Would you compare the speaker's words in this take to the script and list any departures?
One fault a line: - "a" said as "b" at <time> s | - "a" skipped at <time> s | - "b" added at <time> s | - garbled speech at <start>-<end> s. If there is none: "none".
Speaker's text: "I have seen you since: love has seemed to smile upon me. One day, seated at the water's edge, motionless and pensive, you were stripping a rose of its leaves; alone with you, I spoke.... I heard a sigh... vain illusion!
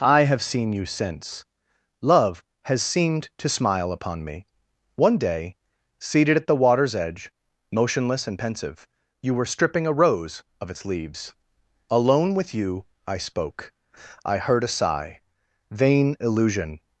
none